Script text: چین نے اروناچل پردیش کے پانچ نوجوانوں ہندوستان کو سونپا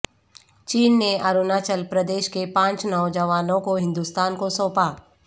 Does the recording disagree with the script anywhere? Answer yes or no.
yes